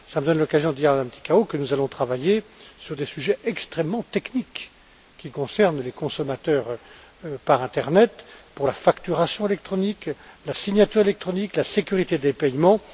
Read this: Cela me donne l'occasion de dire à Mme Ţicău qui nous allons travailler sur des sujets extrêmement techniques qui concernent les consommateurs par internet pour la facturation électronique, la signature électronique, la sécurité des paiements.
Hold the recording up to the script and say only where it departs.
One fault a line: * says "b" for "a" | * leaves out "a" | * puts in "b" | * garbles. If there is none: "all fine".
* says "que" for "qui"